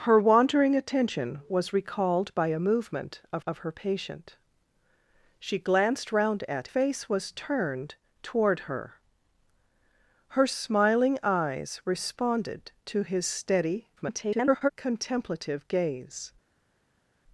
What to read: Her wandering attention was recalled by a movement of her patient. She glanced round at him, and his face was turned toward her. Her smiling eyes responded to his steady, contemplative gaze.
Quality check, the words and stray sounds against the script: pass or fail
fail